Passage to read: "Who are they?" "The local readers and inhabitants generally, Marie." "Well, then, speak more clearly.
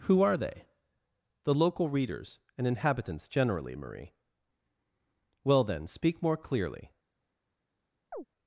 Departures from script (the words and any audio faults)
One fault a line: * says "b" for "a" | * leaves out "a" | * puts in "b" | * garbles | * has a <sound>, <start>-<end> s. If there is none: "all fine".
* has a chirp, 8.1-8.3 s